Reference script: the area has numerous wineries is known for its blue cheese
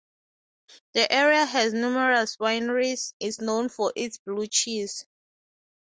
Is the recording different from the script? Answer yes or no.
no